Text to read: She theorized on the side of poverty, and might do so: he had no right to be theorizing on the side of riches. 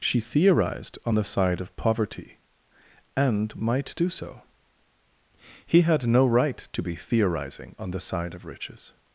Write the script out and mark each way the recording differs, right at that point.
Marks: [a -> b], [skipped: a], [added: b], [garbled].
She theorized on the side of poverty, and might do so: he had no right to be theorizing on the side of riches.